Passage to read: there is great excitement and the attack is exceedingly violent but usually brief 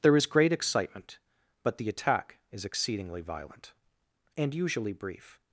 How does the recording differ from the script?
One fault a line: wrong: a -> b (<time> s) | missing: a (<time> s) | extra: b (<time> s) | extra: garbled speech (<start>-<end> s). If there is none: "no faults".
wrong: and -> but (1.6 s)
wrong: but -> and (4.4 s)